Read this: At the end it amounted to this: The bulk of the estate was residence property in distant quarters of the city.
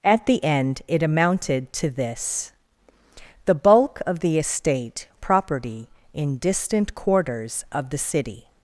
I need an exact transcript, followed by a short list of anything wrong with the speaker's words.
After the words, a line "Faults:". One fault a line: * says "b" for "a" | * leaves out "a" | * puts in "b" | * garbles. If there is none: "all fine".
At the end it amounted to this: The bulk of the estate property in distant quarters of the city.
Faults:
* leaves out "was residence"